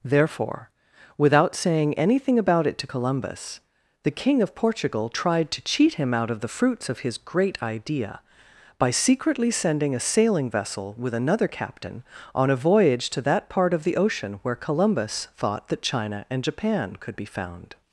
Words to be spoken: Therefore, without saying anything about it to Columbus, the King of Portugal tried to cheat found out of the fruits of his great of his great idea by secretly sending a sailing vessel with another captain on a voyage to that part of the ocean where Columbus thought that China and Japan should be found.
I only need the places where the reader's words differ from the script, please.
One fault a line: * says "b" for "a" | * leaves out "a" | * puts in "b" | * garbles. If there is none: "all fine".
* says "him" for "found"
* leaves out "of his great"
* says "could" for "should"